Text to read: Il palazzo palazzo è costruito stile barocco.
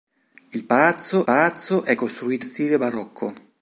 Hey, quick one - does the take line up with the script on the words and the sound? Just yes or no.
yes